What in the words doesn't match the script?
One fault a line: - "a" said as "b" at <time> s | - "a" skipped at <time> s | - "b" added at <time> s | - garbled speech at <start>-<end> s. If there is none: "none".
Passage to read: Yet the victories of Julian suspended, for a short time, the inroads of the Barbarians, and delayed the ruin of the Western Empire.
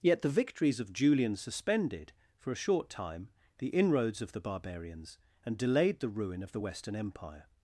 none